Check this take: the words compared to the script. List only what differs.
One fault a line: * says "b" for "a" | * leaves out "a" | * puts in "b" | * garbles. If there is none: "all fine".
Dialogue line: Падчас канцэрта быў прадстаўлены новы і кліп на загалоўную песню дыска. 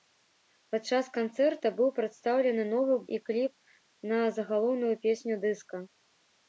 all fine